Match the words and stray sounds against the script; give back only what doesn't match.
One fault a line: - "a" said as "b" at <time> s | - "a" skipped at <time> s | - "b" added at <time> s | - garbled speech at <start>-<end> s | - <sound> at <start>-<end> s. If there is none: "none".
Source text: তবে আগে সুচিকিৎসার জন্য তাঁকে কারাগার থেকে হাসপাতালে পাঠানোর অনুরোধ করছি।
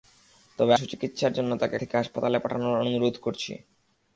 - "আগে" skipped at 0.7 s
- "কারাগার" skipped at 1.8 s